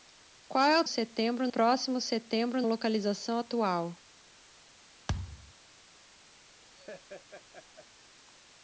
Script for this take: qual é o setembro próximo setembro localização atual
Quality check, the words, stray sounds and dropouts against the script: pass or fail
fail